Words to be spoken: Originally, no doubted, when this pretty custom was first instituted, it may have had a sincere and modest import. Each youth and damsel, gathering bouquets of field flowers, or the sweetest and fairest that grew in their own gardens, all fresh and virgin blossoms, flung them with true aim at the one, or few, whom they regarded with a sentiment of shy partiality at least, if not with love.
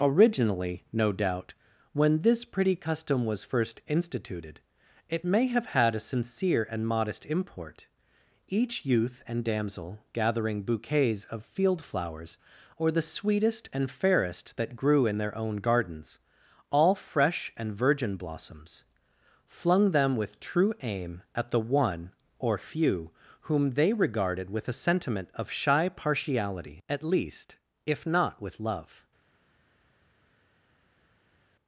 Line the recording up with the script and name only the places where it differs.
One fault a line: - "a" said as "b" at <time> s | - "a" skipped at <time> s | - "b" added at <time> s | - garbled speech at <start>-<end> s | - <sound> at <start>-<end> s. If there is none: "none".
- "doubted" said as "doubt" at 1.1 s